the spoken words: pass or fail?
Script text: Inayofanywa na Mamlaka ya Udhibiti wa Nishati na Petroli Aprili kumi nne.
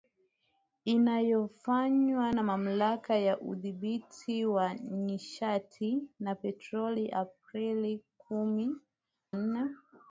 pass